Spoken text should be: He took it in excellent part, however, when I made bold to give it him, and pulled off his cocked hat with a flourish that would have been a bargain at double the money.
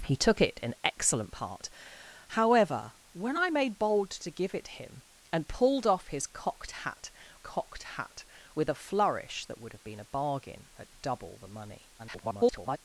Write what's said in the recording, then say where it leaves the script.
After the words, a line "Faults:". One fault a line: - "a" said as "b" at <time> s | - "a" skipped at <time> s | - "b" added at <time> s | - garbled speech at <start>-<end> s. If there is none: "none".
He took it in excellent part, however, when I made bold to give it him, and pulled off his cocked hat cocked hat with a flourish that would have been a bargain at double the money. [garbled]
Faults:
- "cocked hat" added at 7.3 s
- garbled speech at 12.0-12.8 s